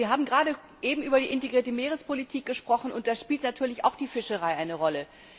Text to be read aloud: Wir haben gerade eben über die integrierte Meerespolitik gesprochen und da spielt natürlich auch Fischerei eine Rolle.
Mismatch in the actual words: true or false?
true